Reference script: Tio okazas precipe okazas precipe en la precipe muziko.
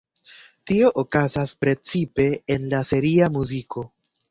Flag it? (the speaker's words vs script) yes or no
yes